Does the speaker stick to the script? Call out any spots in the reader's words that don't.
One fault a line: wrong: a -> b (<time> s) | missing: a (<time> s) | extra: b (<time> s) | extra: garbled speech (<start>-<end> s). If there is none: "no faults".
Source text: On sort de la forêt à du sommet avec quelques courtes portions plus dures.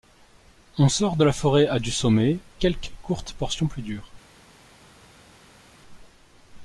missing: avec (2.4 s)